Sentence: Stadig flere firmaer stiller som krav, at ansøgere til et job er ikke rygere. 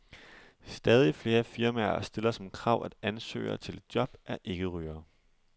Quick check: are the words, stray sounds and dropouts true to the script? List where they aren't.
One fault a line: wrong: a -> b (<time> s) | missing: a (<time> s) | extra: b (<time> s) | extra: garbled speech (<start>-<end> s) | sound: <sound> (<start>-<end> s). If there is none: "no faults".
no faults